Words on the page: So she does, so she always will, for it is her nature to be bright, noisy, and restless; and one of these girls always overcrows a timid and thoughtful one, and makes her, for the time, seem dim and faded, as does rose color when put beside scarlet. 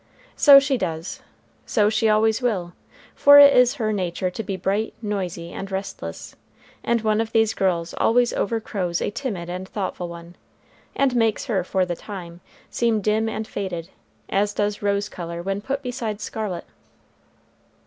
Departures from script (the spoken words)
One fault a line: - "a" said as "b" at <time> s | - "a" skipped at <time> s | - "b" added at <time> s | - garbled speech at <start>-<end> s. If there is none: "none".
none